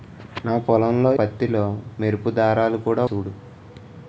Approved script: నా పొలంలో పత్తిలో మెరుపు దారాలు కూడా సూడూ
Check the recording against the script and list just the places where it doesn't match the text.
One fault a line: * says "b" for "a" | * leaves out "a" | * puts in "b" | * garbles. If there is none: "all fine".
all fine